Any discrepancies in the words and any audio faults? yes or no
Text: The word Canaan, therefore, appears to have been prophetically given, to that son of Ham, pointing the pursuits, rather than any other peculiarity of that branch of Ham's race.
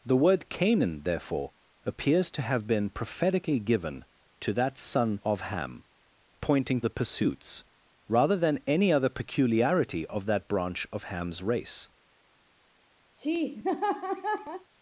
yes